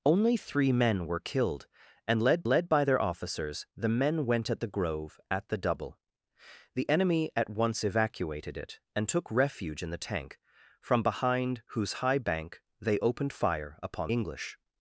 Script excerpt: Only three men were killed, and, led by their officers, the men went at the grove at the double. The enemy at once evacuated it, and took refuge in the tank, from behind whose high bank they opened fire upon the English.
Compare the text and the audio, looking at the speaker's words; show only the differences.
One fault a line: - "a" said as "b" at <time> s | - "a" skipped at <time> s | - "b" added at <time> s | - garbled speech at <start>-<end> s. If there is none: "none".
- "led" added at 2.5 s
- "the" skipped at 14.1 s